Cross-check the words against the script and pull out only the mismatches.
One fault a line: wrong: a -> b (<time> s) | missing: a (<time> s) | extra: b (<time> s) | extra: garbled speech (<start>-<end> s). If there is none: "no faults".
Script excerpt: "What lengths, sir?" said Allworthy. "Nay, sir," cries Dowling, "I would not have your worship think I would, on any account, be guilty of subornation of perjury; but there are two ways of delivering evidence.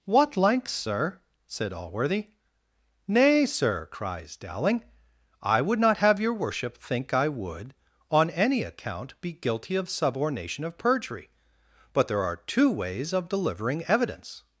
no faults